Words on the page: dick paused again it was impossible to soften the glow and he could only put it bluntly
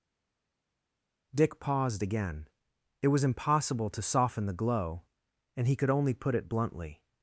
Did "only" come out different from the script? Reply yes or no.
no